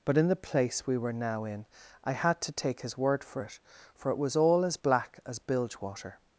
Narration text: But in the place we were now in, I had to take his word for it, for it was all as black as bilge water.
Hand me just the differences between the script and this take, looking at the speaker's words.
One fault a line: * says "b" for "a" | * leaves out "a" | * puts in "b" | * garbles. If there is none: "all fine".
all fine